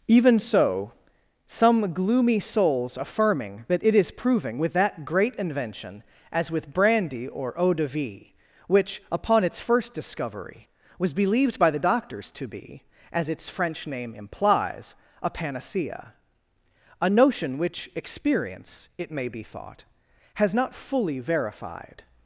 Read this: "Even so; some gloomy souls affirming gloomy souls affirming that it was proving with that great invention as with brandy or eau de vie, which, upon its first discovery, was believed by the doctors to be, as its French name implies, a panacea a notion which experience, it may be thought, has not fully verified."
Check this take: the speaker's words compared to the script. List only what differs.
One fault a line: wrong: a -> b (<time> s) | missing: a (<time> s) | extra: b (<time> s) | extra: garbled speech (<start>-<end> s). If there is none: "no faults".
missing: gloomy souls affirming (3.6 s)
wrong: was -> is (3.9 s)